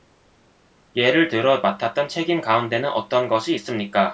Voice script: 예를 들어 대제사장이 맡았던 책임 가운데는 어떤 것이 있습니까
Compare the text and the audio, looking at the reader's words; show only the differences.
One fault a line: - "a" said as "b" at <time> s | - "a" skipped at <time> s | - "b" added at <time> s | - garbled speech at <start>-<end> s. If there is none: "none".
- "대제사장이" skipped at 1.6 s